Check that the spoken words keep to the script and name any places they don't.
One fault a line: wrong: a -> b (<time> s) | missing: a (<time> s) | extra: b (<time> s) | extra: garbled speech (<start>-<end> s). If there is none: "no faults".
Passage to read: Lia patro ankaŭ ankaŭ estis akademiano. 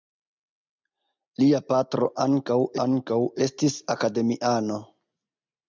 no faults